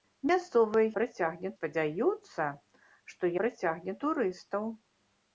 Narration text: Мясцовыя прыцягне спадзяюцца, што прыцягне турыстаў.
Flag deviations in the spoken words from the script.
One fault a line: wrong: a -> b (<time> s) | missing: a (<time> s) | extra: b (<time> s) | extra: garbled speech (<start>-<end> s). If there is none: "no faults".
no faults